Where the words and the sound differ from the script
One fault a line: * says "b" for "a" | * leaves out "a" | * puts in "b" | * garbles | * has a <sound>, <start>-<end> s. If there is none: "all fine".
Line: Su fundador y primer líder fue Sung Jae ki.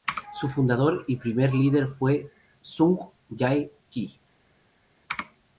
all fine